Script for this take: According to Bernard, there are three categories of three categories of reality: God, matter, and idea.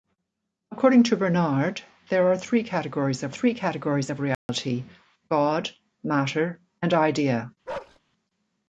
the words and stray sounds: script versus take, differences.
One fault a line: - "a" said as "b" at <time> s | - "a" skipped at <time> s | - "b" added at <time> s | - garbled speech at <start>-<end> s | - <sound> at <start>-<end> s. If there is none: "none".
- dropout at 4.3-4.5 s
- bark at 7.7-8.0 s